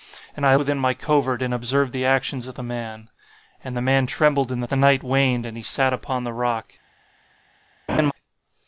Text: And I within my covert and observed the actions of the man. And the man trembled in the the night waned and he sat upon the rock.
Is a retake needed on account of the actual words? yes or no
no